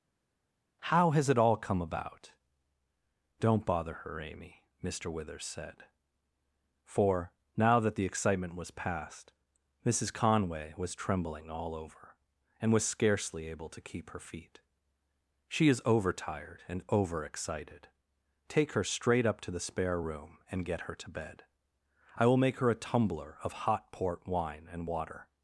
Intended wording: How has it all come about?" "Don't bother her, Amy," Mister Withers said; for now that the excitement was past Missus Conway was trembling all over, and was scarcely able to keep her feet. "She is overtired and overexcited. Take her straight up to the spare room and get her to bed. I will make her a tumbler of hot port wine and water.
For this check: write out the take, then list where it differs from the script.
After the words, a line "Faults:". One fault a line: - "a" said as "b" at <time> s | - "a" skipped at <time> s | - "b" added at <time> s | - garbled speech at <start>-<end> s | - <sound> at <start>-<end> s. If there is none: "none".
How has it all come about?" "Don't bother her, Amy," Mister Withers said; for now that the excitement was past Missus Conway was trembling all over, and was scarcely able to keep her feet. "She is overtired and overexcited. Take her straight up to the spare room and get her to bed. I will make her a tumbler of hot port wine and water.
Faults:
none